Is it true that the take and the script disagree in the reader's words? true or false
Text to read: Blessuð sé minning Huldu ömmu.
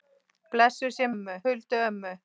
true